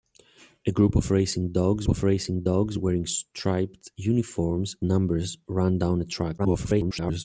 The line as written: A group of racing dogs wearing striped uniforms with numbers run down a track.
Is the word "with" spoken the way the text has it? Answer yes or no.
no